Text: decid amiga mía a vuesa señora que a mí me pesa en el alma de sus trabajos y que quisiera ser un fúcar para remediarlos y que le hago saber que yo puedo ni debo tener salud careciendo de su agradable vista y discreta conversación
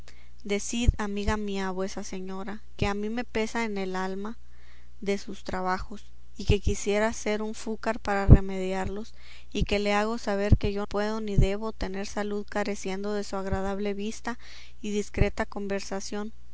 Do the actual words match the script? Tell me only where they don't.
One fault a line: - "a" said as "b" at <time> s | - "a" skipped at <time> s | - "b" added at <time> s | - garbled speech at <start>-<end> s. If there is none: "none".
none